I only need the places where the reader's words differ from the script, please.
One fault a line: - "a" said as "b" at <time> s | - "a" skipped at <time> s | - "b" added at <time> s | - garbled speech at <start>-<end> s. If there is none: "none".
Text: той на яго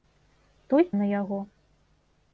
none